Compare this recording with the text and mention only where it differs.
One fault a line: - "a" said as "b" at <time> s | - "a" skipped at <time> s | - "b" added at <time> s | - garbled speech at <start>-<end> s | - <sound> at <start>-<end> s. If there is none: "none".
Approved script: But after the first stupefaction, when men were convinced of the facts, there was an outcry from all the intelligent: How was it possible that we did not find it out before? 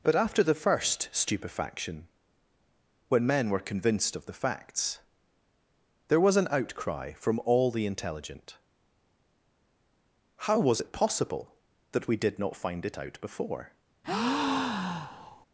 - breath at 14.0-15.5 s